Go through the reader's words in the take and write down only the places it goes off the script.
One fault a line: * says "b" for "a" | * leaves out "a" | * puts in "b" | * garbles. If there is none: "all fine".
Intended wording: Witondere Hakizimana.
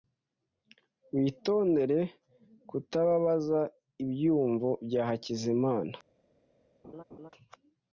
* puts in "kutababaza ibyiyumvo bya"